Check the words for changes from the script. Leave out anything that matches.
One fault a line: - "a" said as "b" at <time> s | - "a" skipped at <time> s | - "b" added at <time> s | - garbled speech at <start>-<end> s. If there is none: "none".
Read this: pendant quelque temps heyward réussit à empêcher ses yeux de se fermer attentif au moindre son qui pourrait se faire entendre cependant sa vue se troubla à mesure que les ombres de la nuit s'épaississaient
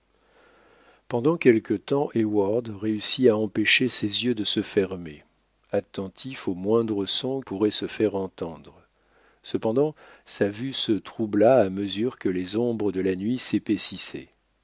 - "qui" skipped at 7.4 s